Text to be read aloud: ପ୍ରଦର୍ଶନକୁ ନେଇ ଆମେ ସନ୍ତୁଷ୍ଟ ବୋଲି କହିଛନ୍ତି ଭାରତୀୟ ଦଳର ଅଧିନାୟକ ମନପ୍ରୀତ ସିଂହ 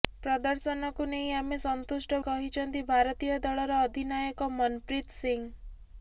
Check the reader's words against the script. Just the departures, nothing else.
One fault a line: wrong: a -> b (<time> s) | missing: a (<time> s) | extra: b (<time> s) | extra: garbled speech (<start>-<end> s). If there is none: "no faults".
missing: ବୋଲି (2.2 s)